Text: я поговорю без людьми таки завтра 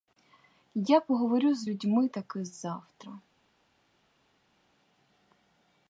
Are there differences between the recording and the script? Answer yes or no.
yes